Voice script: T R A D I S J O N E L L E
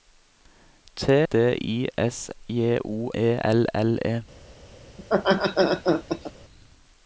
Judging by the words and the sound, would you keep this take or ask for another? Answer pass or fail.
fail